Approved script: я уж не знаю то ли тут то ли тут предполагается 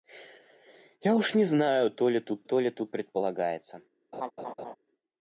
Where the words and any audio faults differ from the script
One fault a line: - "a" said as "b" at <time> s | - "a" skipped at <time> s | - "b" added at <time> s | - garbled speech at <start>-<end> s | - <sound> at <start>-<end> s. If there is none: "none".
- laugh at 4.1-4.8 s